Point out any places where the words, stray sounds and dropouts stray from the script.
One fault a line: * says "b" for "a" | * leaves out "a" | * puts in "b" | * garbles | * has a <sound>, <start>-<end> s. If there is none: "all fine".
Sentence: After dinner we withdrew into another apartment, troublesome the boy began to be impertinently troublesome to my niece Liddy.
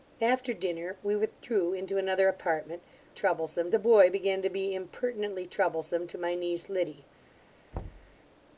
* has a thud, 7.7-8.2 s